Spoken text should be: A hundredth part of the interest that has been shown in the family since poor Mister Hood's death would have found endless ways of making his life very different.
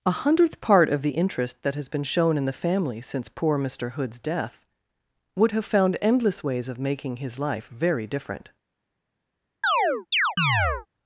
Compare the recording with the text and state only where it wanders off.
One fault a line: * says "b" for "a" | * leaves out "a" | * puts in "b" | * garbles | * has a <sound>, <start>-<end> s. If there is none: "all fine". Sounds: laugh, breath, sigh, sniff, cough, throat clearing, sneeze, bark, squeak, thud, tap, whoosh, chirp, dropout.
* has a chirp, 9.6-10.9 s